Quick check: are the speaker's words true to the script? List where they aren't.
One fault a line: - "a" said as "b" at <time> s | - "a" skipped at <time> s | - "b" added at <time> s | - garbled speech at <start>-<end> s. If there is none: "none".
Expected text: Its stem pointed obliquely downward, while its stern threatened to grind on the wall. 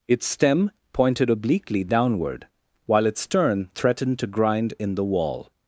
- "on" said as "in" at 4.8 s